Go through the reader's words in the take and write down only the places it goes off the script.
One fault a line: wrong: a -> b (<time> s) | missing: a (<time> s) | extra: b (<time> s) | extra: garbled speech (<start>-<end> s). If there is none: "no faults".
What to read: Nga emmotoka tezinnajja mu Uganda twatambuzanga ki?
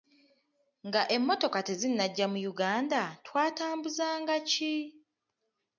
no faults